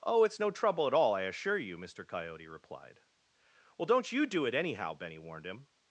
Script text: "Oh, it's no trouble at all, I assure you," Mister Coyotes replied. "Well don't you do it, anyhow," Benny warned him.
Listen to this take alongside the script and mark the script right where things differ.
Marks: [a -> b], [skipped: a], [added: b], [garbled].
"Oh, it's no trouble at all, I assure you," Mister [Coyotes -> Coyote] replied. "Well don't you do it, anyhow," Benny warned him.